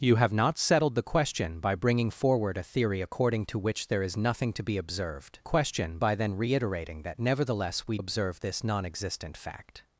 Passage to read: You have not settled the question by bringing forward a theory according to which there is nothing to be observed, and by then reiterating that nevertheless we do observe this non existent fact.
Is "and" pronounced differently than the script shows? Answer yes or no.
yes